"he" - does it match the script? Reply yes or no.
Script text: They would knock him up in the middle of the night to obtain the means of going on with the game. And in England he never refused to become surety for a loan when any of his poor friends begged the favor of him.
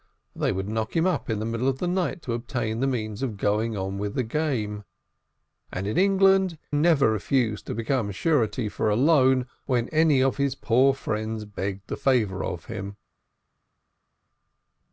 no